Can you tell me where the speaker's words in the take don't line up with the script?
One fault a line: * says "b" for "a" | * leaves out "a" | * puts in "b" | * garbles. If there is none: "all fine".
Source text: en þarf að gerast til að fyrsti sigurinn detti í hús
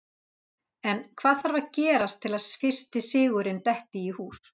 * puts in "hvað"